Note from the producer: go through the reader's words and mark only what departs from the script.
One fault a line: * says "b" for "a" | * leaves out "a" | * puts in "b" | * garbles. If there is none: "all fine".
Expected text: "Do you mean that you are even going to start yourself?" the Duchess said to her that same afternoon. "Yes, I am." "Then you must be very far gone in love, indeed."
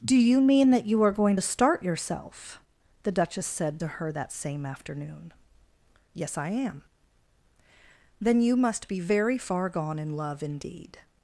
* leaves out "even"